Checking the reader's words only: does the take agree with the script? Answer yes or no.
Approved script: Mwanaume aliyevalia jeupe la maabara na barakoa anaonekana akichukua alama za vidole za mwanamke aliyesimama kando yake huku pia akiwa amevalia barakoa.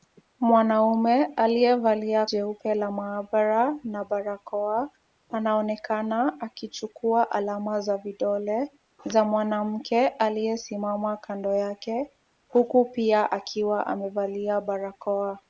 yes